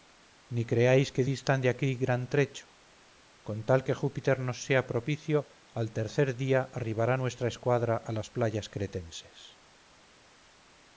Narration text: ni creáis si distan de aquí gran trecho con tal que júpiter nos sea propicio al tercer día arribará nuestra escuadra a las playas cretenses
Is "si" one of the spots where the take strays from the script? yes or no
yes